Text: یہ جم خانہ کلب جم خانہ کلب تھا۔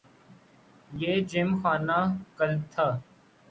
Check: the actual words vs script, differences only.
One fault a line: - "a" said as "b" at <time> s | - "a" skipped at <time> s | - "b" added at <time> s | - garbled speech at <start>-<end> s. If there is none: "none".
- "جم خانہ کلب" skipped at 2.6 s